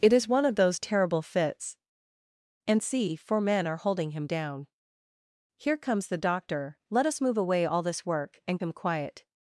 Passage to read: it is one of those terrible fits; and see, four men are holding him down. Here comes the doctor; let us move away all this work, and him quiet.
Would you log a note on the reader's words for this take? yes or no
no